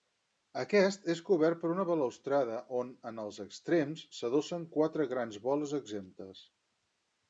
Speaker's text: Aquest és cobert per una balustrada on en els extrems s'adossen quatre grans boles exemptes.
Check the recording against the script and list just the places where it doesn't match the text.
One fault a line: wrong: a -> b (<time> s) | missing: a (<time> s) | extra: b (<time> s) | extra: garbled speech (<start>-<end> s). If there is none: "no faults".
no faults